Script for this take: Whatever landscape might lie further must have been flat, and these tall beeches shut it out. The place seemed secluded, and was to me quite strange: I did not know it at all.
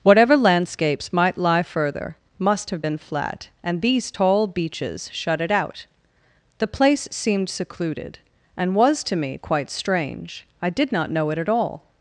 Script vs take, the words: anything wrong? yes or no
yes